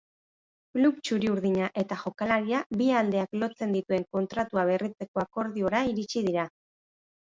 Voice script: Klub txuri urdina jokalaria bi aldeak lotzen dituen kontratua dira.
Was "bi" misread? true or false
false